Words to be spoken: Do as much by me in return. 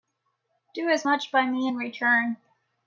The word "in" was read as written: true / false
true